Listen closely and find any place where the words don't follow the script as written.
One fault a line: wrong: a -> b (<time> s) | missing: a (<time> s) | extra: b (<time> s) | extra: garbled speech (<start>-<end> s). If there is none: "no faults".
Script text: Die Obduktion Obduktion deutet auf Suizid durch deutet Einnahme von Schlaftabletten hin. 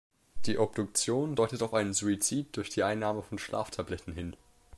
missing: Obduktion (1.4 s)
extra: einen (1.7 s)
wrong: deutet -> die (2.7 s)